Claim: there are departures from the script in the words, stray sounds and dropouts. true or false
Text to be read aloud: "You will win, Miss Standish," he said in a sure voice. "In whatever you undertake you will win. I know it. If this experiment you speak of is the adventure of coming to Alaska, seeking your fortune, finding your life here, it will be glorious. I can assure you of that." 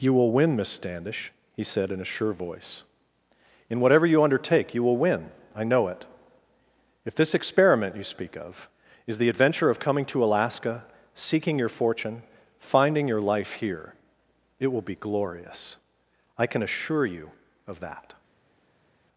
false